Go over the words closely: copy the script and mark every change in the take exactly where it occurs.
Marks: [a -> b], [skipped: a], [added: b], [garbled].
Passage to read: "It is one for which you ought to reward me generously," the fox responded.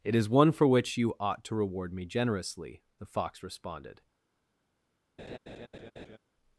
"It is one for which you ought to reward me generously," the fox responded.